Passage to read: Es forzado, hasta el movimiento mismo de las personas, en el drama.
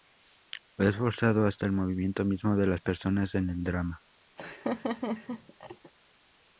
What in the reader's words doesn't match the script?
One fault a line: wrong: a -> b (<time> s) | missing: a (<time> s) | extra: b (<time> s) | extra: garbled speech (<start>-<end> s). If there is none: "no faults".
no faults